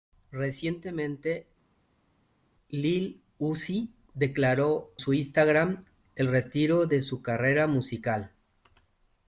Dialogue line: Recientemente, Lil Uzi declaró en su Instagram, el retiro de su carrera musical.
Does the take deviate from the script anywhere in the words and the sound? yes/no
yes